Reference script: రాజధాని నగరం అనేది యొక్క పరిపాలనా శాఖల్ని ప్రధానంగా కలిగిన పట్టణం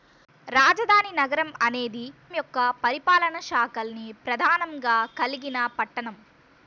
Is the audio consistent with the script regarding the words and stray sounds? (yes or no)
yes